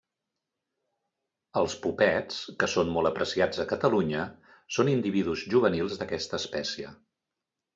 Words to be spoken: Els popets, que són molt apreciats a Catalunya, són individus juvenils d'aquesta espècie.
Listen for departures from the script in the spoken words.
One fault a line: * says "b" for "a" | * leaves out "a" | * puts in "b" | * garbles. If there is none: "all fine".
all fine